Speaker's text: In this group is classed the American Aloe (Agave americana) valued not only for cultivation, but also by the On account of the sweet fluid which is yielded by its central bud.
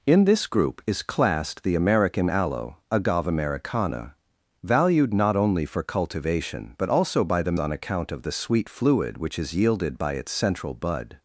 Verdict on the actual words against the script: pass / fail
pass